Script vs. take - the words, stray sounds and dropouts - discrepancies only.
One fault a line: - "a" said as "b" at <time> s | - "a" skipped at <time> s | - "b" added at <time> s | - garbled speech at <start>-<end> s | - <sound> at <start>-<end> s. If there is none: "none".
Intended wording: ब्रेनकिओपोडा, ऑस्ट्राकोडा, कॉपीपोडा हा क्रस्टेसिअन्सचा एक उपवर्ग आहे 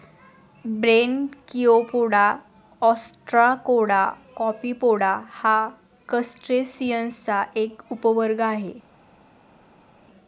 none